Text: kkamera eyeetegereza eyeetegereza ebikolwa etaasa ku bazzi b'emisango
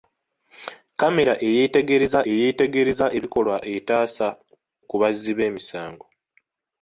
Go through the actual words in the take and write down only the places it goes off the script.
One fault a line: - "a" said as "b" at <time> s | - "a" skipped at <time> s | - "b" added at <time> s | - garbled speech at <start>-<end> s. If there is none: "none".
none